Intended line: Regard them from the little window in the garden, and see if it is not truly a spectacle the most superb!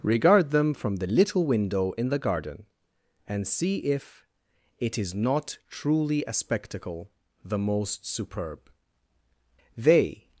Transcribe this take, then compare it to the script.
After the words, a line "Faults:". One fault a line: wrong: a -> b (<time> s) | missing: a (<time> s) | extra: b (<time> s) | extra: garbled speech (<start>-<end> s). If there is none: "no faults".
Regard them from the little window in the garden, and see if it is not truly a spectacle the most superb! They
Faults:
extra: They (9.8 s)